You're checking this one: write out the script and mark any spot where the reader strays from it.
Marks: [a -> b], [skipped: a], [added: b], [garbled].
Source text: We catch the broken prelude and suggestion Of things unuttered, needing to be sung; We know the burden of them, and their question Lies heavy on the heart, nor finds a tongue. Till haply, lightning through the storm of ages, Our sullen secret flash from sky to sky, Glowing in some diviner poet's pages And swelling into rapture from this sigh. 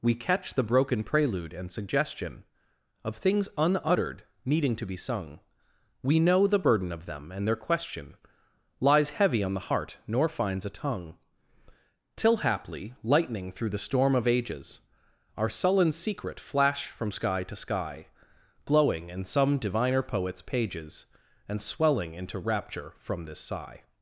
We catch the broken prelude and suggestion Of things unuttered, needing to be sung; We know the burden of them, and their question Lies heavy on the heart, nor finds a tongue. Till haply, lightning through the storm of ages, Our sullen secret flash from sky to sky, Glowing in some diviner poet's pages And swelling into rapture from this sigh.